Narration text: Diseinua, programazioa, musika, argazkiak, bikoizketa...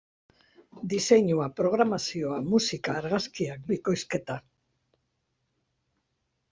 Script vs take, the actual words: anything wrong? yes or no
no